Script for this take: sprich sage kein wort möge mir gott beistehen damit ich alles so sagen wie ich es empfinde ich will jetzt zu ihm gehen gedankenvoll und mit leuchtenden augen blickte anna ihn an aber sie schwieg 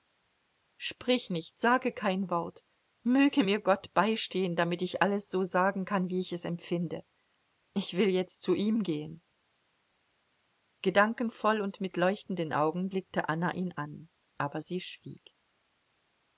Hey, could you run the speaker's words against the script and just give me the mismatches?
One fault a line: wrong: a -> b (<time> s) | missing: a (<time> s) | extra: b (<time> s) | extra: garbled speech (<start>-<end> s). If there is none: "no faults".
extra: nicht (1.3 s)
extra: kann (5.8 s)